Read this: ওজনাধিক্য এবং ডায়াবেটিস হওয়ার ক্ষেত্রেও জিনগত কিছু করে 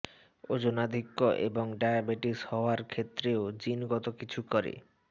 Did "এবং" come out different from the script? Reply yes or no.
no